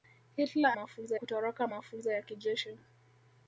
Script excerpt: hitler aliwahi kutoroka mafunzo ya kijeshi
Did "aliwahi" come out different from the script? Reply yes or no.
yes